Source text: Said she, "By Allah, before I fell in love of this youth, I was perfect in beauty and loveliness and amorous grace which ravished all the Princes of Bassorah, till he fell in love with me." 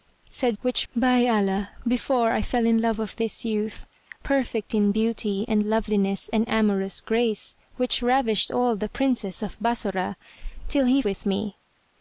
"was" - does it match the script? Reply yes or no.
no